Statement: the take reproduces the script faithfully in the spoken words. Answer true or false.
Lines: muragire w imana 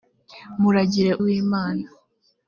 true